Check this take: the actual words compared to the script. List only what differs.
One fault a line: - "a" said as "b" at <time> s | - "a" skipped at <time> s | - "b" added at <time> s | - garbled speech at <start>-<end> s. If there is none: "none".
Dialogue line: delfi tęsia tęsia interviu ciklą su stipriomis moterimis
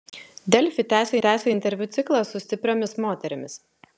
none